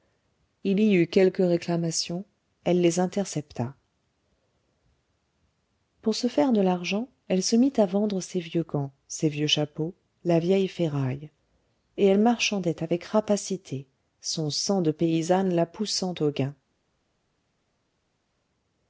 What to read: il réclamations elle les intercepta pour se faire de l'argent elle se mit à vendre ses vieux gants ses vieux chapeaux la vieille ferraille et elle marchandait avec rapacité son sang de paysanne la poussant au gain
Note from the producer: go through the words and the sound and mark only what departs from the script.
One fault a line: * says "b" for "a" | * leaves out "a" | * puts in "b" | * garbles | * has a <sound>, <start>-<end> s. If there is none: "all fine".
* puts in "y eut quelques"